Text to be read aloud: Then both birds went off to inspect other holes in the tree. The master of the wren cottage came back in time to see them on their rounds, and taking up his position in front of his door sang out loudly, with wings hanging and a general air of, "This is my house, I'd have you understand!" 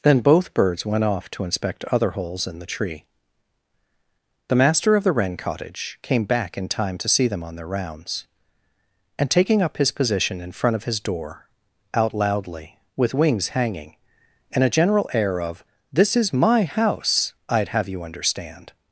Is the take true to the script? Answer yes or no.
no